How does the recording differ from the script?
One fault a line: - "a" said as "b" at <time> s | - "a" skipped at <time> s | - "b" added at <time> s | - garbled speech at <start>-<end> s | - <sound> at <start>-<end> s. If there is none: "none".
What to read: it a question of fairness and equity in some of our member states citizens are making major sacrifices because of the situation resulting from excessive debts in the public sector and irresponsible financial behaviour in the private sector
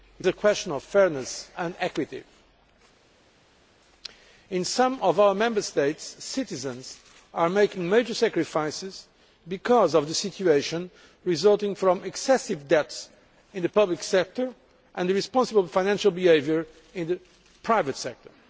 none